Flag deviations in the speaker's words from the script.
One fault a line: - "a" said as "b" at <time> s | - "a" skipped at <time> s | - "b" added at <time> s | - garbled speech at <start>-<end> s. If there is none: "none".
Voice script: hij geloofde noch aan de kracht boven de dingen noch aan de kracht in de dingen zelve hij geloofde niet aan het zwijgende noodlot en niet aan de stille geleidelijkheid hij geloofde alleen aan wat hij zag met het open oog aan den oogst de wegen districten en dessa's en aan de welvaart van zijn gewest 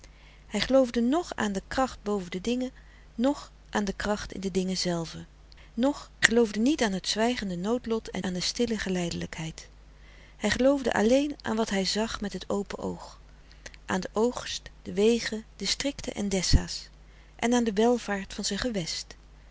- "hij" said as "noch" at 5.7 s
- "niet" skipped at 8.2 s